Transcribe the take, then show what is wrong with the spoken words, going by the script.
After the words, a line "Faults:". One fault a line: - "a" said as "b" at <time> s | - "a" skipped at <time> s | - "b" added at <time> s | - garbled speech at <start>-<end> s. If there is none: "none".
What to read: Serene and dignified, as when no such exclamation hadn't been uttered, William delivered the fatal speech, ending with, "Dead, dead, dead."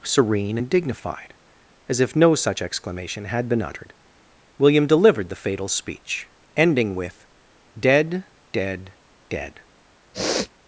Serene and dignified, as if no such exclamation had been uttered, William delivered the fatal speech, ending with, "Dead, dead, dead."
Faults:
- "when" said as "if" at 2.0 s
- "hadn't" said as "had" at 3.2 s